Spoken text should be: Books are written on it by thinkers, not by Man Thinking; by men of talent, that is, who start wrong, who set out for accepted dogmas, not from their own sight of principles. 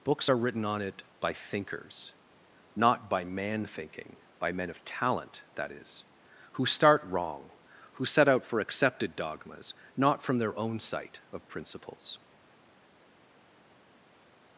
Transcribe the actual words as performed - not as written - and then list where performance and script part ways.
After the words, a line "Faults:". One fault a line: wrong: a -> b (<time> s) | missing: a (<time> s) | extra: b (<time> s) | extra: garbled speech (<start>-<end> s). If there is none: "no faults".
Books are written on it by thinkers, not by Man Thinking; by men of talent, that is, who start wrong, who set out for accepted dogmas, not from their own sight of principles.
Faults:
no faults